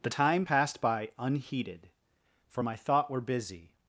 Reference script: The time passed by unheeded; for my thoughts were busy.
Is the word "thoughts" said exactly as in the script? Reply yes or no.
no